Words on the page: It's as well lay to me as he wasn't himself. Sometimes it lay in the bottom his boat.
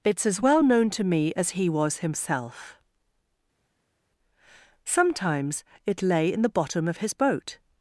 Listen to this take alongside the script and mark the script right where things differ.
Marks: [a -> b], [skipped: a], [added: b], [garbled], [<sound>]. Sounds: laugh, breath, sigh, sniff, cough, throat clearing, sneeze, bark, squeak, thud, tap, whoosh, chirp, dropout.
It's as well [lay -> known] to me as he [wasn't -> was] himself. Sometimes it lay in the bottom [added: of] his boat.